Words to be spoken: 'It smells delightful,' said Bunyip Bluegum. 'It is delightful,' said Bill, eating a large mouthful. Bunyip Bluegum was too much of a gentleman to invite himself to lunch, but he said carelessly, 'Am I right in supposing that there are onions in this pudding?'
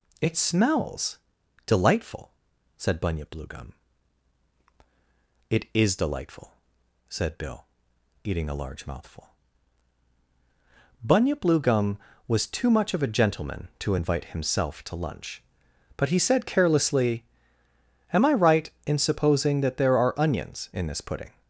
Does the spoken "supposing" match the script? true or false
true